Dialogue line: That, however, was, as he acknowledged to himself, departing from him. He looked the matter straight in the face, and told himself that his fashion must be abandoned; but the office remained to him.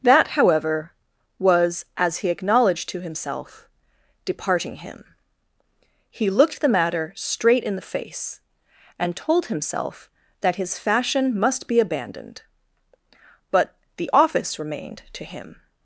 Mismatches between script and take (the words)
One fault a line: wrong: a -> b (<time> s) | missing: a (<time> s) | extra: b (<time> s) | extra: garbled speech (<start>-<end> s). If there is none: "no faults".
missing: from (4.8 s)